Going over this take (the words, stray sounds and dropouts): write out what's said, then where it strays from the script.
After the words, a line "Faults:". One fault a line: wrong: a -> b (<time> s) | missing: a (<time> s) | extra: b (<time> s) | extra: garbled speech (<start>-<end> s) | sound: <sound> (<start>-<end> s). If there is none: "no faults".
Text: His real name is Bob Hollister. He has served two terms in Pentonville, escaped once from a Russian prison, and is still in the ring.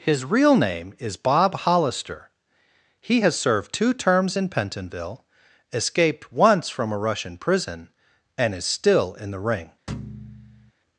His real name is Bob Hollister. He has served two terms in Pentonville, escaped once from a Russian prison, and is still in the ring.
Faults:
sound: thud (9.9-10.7 s)